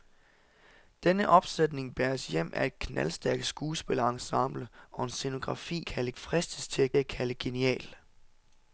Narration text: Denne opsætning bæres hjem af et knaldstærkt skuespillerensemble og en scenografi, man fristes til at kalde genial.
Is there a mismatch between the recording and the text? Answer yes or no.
yes